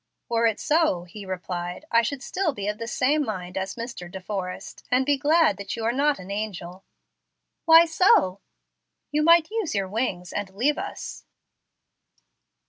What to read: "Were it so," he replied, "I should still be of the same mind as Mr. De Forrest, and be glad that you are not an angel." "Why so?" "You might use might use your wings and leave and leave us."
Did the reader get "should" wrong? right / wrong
right